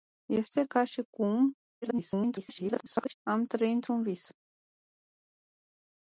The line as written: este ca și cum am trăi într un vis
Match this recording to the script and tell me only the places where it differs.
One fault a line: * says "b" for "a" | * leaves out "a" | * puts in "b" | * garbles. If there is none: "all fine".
* garbles